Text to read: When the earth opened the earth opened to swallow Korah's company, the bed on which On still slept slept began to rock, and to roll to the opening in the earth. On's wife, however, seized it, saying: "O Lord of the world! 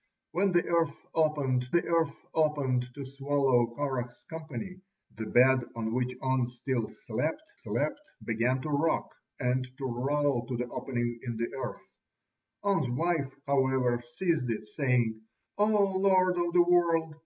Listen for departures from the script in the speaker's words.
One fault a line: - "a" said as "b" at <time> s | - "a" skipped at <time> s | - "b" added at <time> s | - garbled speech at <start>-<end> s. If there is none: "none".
none